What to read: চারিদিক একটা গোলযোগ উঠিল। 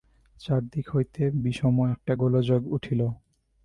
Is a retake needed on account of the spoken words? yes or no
yes